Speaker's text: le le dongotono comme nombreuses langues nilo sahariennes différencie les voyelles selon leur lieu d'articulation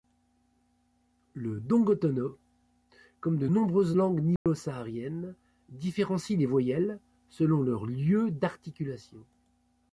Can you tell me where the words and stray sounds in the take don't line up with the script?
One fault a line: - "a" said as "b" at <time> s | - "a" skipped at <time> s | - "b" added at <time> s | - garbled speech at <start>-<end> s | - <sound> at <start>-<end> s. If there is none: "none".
- "le" skipped at 1.6 s
- "de" added at 3.4 s
- dropout at 4.4-4.5 s